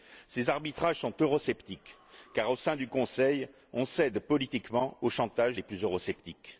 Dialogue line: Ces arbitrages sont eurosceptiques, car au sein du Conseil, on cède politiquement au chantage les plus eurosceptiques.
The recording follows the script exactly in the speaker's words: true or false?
true